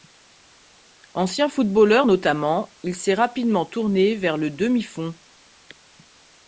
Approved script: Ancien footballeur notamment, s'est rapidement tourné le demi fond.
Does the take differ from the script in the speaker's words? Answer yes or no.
yes